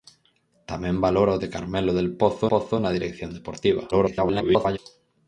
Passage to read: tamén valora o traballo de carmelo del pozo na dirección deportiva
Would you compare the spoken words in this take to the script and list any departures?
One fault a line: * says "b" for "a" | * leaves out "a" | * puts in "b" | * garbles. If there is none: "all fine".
* leaves out "traballo"
* puts in "pozo"
* garbles